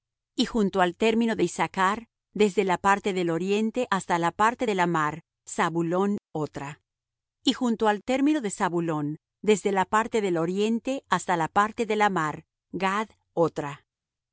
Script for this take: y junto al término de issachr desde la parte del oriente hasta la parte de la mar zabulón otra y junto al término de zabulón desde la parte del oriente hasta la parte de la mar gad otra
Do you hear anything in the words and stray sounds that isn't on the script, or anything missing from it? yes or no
no